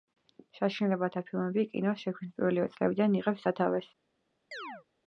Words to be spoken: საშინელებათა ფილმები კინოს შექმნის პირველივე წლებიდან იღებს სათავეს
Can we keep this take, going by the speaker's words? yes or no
yes